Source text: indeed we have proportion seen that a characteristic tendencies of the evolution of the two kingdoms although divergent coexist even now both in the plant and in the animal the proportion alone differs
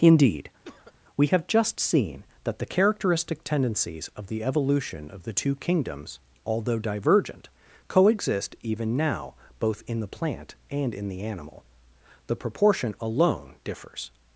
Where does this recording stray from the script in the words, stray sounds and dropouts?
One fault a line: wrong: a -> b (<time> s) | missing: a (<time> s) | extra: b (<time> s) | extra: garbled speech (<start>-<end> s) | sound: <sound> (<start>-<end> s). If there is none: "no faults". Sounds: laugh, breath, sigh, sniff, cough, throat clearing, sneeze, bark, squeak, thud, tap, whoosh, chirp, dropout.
sound: cough (0.6-0.9 s)
wrong: proportion -> just (1.5 s)
wrong: a -> the (2.6 s)